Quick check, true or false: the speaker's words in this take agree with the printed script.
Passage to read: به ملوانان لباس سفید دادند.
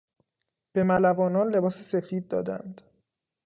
true